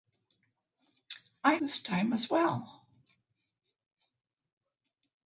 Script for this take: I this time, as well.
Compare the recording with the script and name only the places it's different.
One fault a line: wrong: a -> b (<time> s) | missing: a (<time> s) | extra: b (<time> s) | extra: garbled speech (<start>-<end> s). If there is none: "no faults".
no faults